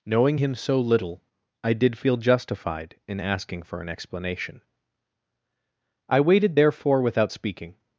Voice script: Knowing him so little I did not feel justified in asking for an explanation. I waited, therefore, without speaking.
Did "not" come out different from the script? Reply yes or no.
yes